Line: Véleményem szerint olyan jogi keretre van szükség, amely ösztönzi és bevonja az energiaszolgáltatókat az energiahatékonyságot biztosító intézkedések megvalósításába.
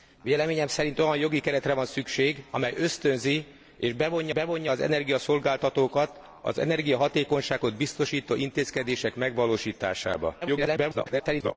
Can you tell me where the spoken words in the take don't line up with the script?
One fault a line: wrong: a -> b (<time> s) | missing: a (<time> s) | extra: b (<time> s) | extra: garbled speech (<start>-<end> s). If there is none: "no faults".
extra: bevonja (4.3 s)
extra: garbled speech (10.4-11.6 s)